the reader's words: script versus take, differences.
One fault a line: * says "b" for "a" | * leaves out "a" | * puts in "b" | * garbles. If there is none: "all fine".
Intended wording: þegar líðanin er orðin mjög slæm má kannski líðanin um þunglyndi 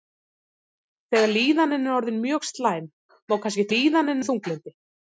all fine